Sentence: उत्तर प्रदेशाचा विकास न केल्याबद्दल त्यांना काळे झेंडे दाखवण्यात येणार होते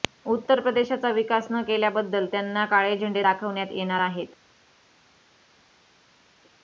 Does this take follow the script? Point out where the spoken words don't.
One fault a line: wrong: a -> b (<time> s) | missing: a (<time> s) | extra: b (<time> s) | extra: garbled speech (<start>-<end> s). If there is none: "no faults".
wrong: होते -> आहेत (4.0 s)